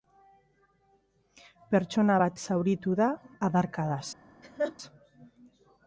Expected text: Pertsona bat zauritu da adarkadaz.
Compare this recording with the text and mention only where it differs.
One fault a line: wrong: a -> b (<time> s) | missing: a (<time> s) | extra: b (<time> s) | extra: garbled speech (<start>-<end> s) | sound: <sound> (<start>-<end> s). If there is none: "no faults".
sound: laugh (4.4-4.8 s)